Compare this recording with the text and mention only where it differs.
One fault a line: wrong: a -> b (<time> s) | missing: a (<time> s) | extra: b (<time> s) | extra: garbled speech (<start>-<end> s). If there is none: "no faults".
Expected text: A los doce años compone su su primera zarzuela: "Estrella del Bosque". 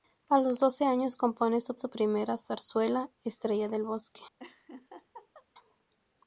no faults